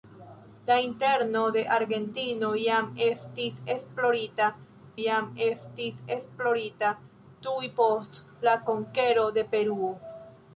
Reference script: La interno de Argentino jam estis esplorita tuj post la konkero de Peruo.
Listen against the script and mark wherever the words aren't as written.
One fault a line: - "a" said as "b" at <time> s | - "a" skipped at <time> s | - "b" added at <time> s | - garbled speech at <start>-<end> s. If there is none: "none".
- "jam estis esplorita" added at 5.0 s